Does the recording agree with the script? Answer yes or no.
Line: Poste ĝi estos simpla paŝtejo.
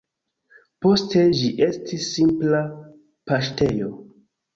no